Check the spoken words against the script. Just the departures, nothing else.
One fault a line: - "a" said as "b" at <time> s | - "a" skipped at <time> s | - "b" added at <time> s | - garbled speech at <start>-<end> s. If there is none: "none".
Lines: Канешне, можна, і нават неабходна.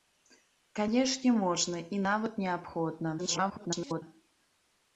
- garbled speech at 3.2-4.0 s